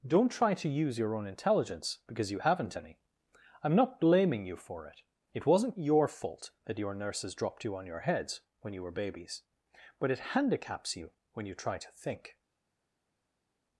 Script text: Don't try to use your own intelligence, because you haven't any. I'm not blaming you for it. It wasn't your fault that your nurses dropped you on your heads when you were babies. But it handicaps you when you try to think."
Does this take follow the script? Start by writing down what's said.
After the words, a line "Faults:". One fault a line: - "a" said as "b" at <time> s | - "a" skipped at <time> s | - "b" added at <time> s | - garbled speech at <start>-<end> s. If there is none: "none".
Don't try to use your own intelligence, because you haven't any. I'm not blaming you for it. It wasn't your fault that your nurses dropped you on your heads when you were babies. But it handicaps you when you try to think."
Faults:
none